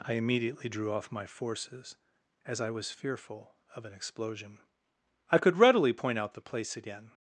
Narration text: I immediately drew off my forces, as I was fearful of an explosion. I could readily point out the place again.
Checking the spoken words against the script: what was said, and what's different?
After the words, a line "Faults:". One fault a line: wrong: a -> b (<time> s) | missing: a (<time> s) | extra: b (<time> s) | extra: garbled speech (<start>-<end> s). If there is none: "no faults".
I immediately drew off my forces, as I was fearful of an explosion. I could readily point out the place again.
Faults:
no faults